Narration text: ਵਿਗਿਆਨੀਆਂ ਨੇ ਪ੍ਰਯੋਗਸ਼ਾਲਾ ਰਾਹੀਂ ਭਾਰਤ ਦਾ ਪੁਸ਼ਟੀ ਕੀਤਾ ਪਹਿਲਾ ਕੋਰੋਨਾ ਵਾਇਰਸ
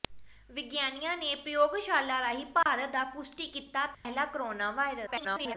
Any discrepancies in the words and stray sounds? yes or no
yes